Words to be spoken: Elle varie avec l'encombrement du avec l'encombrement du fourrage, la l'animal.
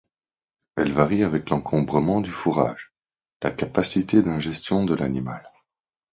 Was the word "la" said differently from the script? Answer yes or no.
yes